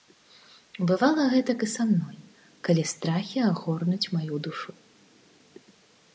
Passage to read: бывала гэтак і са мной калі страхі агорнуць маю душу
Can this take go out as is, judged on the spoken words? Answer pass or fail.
pass